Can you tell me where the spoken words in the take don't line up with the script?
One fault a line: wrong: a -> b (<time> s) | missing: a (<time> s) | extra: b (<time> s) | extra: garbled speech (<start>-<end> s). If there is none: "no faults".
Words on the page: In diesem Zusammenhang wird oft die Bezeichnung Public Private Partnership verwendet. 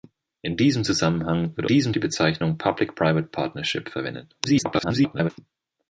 wrong: oft -> diesem (1.7 s)
extra: garbled speech (4.4-5.3 s)